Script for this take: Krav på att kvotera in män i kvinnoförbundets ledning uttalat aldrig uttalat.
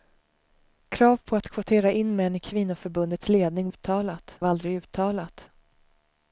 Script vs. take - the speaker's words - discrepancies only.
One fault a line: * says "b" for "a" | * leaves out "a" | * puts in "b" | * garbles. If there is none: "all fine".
all fine